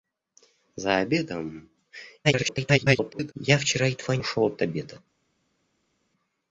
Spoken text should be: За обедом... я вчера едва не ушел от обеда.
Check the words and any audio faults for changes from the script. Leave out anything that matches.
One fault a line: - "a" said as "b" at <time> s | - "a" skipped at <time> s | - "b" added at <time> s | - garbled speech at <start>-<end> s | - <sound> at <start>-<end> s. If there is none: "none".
- garbled speech at 2.2-3.3 s
- "не" skipped at 4.2 s